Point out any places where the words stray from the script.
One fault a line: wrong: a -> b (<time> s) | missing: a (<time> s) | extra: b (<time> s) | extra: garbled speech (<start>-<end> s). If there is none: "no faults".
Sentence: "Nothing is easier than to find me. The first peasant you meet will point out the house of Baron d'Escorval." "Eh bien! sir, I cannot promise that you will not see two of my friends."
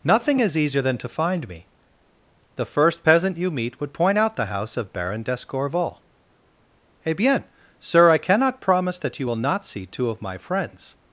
wrong: will -> would (3.8 s)